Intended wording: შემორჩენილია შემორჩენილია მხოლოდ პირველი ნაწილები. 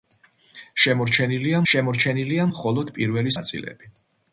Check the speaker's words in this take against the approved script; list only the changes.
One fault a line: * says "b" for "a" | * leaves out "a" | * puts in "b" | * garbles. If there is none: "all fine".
all fine